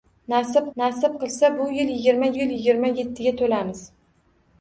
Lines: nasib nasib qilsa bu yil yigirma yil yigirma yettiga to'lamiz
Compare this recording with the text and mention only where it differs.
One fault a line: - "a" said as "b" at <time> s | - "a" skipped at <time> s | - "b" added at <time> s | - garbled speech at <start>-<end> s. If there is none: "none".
none